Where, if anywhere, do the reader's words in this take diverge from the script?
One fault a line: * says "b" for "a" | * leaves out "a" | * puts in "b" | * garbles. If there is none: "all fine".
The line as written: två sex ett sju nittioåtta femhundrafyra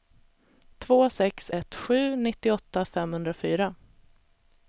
all fine